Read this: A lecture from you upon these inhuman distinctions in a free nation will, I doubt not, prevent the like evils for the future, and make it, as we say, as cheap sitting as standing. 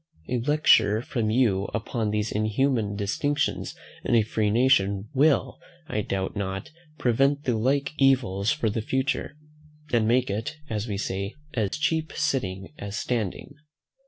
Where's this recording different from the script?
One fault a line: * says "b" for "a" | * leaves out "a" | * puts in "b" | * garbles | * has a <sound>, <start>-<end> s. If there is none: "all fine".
* has a dropout, 11.7-11.7 s